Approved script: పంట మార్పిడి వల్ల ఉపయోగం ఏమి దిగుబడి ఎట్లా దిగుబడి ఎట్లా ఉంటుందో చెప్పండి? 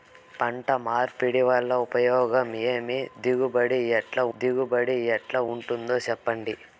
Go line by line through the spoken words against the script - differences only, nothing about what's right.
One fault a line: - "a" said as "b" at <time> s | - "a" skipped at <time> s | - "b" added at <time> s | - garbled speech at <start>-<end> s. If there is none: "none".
none